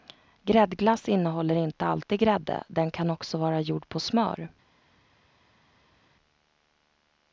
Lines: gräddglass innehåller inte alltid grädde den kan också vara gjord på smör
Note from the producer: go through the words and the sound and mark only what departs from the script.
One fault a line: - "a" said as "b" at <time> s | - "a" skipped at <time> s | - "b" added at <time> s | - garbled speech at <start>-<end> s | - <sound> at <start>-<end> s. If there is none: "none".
none